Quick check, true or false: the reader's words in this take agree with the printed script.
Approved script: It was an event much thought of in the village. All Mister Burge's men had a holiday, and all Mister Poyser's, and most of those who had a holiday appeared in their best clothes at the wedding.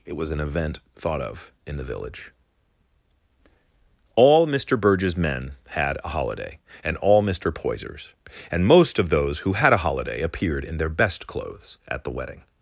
false